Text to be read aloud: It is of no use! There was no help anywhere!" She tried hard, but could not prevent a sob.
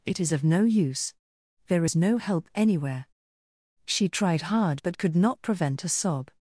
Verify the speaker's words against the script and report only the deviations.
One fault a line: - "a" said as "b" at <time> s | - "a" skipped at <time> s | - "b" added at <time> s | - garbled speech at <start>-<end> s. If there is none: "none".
- "was" said as "is" at 1.8 s